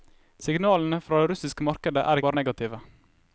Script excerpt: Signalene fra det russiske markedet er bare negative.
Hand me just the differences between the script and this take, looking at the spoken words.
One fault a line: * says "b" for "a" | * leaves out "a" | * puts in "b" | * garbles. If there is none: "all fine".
all fine